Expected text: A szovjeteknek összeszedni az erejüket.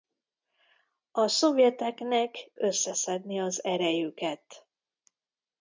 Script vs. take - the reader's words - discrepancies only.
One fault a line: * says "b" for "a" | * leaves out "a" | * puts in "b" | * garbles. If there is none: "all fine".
all fine